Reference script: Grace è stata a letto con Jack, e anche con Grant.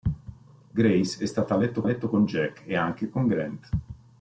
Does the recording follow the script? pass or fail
fail